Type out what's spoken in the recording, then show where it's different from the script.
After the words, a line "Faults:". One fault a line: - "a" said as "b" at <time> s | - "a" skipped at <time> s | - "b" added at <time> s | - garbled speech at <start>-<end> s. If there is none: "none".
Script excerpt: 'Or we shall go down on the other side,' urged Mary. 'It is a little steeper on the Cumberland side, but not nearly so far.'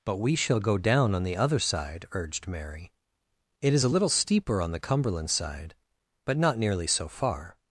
'But we shall go down on the other side,' urged Mary. 'It is a little steeper on the Cumberland side, but not nearly so far.'
Faults:
- "Or" said as "But" at 0.0 s